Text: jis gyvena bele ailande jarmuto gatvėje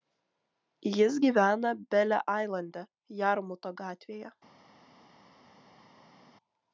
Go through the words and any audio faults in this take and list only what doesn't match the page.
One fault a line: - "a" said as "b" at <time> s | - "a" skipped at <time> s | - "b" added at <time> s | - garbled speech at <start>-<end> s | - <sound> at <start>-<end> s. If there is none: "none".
none